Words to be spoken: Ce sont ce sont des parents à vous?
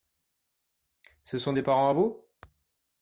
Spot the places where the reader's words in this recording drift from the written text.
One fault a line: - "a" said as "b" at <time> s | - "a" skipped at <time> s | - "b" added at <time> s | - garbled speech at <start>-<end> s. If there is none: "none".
- "ce sont" skipped at 1.5 s